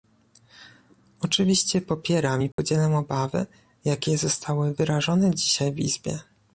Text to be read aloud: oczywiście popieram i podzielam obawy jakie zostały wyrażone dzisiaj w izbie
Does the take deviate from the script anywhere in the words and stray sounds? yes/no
yes